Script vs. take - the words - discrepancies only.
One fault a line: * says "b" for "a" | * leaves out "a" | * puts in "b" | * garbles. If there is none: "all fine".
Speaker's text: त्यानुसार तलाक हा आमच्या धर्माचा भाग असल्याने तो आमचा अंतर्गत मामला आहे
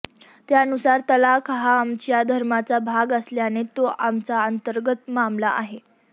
all fine